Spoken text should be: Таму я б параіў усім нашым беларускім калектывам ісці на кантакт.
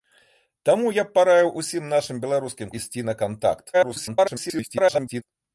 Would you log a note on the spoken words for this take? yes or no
yes